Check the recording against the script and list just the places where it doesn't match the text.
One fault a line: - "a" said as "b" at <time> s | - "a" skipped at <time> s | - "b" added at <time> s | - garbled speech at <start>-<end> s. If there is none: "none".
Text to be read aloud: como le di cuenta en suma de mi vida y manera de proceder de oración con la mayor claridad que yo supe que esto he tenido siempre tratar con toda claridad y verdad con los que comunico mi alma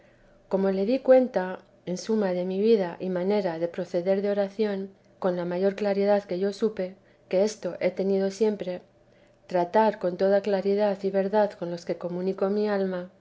none